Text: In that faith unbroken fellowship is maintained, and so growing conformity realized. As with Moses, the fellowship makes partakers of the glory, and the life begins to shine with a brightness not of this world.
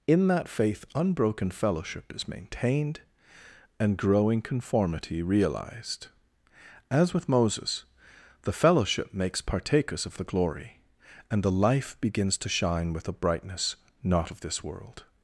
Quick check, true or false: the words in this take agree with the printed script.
false